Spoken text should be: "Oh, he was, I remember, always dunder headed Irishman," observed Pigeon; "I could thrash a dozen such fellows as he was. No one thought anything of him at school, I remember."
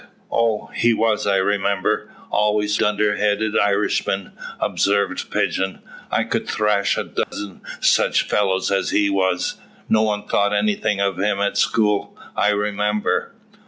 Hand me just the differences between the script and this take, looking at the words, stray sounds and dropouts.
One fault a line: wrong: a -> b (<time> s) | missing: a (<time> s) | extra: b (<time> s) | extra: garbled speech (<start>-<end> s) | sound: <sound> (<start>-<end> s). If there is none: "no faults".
sound: dropout (7.2-7.3 s)